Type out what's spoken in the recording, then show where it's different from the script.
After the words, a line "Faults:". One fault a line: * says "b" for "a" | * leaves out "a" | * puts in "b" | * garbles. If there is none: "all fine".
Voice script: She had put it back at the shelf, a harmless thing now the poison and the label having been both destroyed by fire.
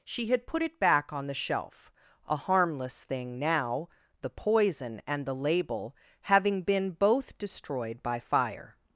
She had put it back on the shelf, a harmless thing now the poison and the label having been both destroyed by fire.
Faults:
* says "on" for "at"